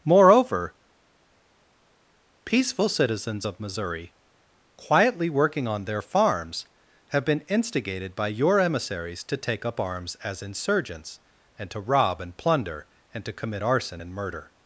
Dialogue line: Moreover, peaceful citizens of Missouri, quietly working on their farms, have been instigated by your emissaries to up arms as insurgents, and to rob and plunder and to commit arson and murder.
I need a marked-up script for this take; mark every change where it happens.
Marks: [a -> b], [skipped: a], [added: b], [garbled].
Moreover, peaceful citizens of Missouri, quietly working on their farms, have been instigated by your emissaries to [added: take] up arms as insurgents, and to rob and plunder and to commit arson and murder.